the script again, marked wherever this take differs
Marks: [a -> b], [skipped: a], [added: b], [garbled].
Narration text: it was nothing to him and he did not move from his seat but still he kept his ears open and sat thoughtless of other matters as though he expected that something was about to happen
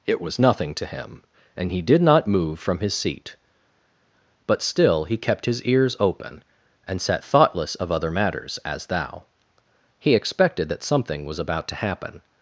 it was nothing to him and he did not move from his seat but still he kept his ears open and sat thoughtless of other matters as [though -> thou] he expected that something was about to happen